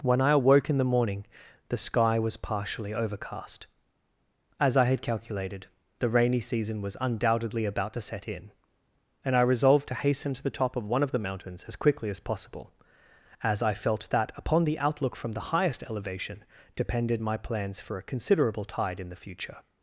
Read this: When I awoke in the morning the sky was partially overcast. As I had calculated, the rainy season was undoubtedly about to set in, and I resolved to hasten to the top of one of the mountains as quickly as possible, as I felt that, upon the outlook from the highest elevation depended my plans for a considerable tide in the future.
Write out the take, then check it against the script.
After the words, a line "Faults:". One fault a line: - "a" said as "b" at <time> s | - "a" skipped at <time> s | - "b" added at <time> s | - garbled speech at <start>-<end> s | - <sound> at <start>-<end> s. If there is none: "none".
When I awoke in the morning the sky was partially overcast. As I had calculated, the rainy season was undoubtedly about to set in, and I resolved to hasten to the top of one of the mountains as quickly as possible, as I felt that, upon the outlook from the highest elevation depended my plans for a considerable tide in the future.
Faults:
none